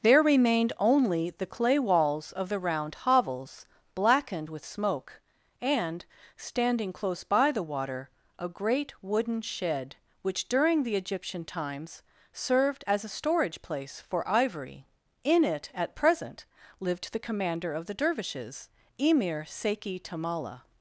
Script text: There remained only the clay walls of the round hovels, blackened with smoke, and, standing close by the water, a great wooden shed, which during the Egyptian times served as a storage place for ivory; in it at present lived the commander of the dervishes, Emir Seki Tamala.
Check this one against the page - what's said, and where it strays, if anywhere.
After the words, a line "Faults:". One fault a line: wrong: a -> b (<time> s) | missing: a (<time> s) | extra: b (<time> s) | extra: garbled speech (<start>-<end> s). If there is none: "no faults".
There remained only the clay walls of the round hovels, blackened with smoke, and, standing close by the water, a great wooden shed, which during the Egyptian times served as a storage place for ivory; in it at present lived the commander of the dervishes, Emir Seki Tamala.
Faults:
no faults